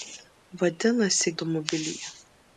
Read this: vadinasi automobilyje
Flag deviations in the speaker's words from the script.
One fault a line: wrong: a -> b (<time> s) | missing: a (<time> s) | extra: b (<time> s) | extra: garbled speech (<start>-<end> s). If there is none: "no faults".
no faults